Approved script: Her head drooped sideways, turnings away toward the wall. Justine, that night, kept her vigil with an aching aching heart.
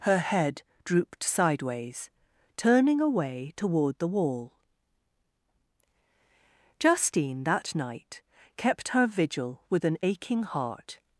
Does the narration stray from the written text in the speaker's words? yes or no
yes